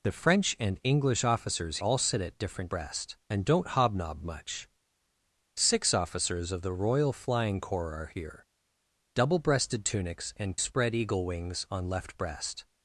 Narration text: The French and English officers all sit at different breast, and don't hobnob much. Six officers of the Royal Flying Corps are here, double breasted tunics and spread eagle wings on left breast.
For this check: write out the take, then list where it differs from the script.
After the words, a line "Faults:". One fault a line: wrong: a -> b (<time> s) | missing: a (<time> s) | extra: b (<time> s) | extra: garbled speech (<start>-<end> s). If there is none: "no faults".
The French and English officers all sit at different breast, and don't hobnob much. Six officers of the Royal Flying Corps are here, double breasted tunics and spread eagle wings on left breast.
Faults:
no faults